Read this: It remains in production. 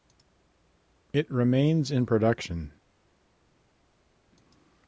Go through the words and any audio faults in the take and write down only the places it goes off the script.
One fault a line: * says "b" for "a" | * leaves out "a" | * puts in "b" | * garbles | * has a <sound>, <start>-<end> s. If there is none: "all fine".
all fine